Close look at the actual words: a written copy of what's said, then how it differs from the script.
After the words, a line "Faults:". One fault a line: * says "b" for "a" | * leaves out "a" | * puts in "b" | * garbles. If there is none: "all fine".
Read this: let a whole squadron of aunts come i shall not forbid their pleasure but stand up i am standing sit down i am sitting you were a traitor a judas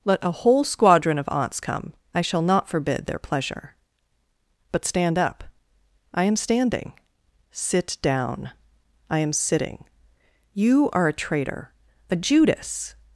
let a whole squadron of aunts come i shall not forbid their pleasure but stand up i am standing sit down i am sitting you are a traitor a judas
Faults:
* says "are" for "were"